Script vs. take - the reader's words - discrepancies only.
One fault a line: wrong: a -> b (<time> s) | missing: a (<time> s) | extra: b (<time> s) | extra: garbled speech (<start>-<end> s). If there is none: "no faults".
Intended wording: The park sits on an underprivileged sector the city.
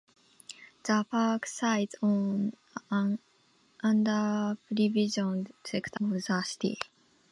no faults